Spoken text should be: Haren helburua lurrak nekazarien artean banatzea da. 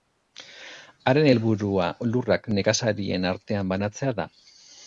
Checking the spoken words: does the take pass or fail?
pass